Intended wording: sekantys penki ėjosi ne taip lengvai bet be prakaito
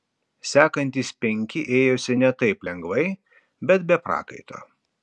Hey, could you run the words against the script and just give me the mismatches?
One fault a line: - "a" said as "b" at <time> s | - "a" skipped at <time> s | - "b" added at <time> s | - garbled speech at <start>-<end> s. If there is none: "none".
none